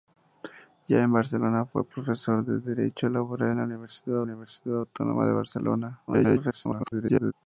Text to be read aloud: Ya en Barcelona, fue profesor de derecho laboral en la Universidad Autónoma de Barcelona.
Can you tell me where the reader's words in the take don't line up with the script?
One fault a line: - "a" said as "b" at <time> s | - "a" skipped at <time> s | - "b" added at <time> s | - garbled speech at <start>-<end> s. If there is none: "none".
- "Universidad" added at 4.2 s
- garbled speech at 6.1-7.3 s